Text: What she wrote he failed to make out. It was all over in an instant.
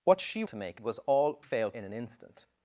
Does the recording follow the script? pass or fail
fail